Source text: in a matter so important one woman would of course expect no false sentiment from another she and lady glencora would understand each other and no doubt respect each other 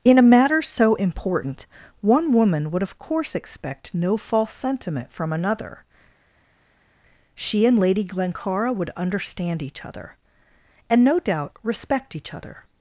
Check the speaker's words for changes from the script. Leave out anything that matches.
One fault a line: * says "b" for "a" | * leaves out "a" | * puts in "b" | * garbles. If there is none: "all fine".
all fine